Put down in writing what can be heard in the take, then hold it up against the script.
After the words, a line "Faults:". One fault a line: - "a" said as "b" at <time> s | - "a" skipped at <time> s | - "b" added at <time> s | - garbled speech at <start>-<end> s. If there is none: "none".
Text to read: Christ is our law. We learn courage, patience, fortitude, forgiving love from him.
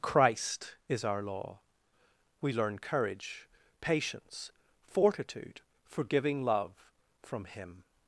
Christ is our law. We learn courage, patience, fortitude, forgiving love from him.
Faults:
none